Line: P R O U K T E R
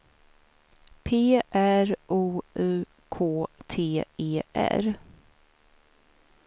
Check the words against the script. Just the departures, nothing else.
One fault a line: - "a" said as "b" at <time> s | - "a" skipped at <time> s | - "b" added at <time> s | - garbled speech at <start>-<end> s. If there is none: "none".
none